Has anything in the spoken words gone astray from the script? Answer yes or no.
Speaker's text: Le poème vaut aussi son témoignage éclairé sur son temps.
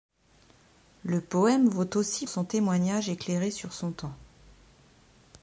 no